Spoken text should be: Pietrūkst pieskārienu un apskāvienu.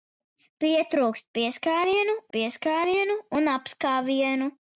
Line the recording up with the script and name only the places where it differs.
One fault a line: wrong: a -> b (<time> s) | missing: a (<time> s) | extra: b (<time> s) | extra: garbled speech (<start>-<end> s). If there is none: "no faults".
extra: pieskārienu (2.4 s)